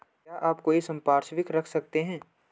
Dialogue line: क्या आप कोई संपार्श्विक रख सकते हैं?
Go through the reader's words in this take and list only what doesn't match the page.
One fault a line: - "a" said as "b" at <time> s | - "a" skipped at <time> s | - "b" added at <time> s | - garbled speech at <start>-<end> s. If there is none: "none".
none